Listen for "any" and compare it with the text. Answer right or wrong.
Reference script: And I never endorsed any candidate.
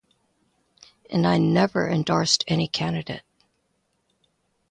right